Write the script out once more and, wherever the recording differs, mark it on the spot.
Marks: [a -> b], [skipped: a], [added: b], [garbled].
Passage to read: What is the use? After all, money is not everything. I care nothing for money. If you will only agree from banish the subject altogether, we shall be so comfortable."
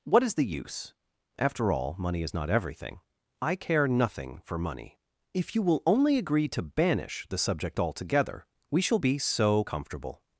What is the use? After all, money is not everything. I care nothing for money. If you will only agree [from -> to] banish the subject altogether, we shall be so comfortable."